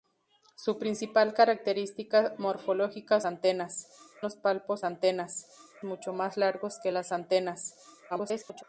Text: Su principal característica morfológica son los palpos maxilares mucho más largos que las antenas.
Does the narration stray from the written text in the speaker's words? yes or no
yes